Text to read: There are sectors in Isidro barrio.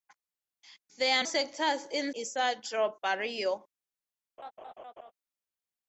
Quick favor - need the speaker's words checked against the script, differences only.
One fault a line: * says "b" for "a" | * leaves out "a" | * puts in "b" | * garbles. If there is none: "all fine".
all fine